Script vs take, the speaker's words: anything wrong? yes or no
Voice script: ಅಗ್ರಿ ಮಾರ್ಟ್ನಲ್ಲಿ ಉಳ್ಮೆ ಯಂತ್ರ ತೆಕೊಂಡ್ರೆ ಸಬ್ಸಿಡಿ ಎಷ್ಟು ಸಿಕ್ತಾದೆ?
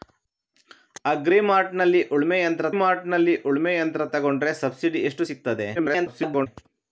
yes